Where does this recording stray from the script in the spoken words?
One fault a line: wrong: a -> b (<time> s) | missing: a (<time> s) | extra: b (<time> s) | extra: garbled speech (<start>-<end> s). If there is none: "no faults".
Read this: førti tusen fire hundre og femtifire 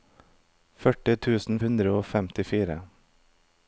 missing: fire (1.6 s)